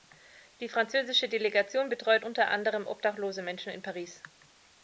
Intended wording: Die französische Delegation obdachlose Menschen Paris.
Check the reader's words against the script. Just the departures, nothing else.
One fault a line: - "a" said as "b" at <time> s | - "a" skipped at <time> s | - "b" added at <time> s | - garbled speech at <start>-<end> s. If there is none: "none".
- "betreut unter anderem" added at 1.9 s
- "in" added at 3.7 s